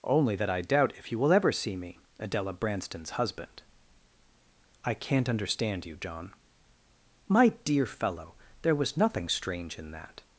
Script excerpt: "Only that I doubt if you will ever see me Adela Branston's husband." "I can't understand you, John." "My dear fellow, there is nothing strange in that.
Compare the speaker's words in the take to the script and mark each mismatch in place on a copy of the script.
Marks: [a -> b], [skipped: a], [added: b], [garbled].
"Only that I doubt if you will ever see me Adela Branston's husband." "I can't understand you, John." "My dear fellow, there [is -> was] nothing strange in that.